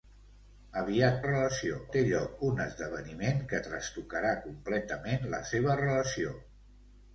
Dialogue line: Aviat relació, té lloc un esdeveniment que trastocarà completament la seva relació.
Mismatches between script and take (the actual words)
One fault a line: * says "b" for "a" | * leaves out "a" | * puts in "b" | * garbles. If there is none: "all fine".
all fine